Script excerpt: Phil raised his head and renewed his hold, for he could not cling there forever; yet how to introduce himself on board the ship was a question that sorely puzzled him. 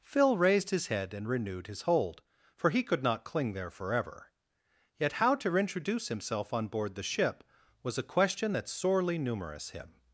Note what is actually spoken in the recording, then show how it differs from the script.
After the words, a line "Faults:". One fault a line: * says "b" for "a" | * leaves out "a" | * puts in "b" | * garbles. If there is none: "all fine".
Phil raised his head and renewed his hold, for he could not cling there forever; yet how to introduce himself on board the ship was a question that sorely numerous him.
Faults:
* says "numerous" for "puzzled"